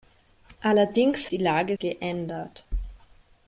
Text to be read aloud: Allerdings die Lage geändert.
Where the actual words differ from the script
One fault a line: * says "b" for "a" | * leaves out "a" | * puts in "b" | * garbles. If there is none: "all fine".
all fine